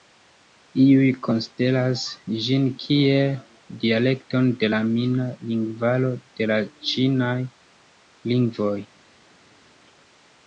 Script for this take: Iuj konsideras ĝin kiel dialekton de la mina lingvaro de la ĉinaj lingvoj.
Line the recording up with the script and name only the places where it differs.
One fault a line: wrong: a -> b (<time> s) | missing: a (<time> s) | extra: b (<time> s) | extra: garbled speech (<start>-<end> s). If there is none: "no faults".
no faults